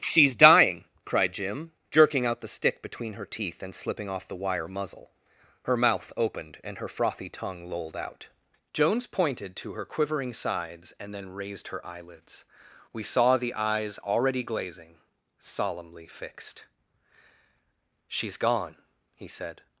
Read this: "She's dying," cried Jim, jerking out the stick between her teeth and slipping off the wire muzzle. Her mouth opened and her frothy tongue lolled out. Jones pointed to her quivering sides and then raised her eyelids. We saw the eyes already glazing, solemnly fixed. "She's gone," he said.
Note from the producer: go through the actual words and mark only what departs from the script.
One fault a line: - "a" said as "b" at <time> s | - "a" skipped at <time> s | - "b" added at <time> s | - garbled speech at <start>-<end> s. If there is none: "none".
none